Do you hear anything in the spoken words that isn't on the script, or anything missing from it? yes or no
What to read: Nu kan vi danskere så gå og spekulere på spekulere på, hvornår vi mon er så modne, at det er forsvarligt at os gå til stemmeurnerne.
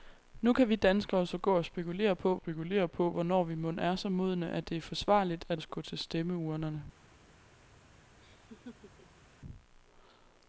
no